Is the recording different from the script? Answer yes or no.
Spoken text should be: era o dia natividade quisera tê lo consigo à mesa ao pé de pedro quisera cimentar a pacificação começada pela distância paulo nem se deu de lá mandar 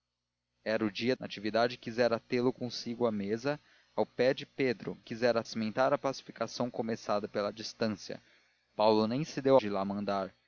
no